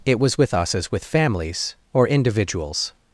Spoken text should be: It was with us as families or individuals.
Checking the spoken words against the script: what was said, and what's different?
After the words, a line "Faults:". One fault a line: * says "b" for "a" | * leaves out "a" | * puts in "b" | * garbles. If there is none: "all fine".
It was with us as with families or individuals.
Faults:
* puts in "with"